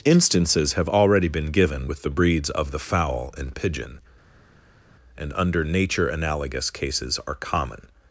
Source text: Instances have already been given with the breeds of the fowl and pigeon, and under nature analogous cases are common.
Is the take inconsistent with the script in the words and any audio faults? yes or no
no